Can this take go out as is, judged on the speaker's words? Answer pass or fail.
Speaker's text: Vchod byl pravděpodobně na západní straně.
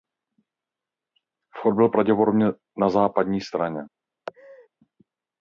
pass